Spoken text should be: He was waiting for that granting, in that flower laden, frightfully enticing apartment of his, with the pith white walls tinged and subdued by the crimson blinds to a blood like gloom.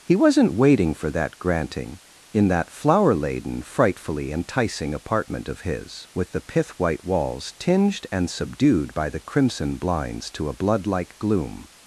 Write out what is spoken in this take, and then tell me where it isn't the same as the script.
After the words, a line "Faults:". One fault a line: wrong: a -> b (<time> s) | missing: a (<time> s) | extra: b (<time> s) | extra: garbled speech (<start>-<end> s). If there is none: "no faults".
He wasn't waiting for that granting, in that flower laden, frightfully enticing apartment of his, with the pith white walls tinged and subdued by the crimson blinds to a blood like gloom.
Faults:
wrong: was -> wasn't (0.1 s)